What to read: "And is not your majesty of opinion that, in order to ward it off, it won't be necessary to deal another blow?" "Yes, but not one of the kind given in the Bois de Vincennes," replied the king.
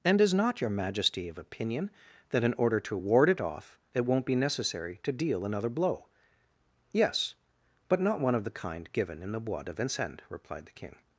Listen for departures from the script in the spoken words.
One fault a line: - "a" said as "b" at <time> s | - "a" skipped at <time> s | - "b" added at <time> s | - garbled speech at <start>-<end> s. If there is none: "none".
none